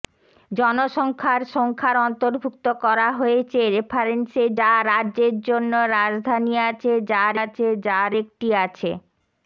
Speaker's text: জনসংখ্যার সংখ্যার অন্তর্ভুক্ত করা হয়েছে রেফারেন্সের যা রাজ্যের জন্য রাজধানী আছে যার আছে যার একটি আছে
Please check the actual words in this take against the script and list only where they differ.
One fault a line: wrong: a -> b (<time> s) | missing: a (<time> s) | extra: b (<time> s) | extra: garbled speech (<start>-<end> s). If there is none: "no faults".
no faults